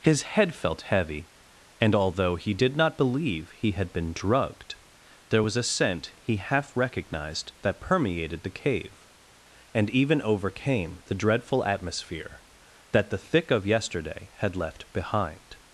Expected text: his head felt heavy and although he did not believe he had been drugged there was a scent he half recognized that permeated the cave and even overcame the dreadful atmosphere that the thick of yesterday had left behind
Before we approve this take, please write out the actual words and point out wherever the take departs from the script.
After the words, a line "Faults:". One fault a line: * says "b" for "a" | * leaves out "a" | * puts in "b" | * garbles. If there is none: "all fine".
his head felt heavy and although he did not believe he had been drugged there was a scent he half recognized that permeated the cave and even overcame the dreadful atmosphere that the thick of yesterday had left behind
Faults:
all fine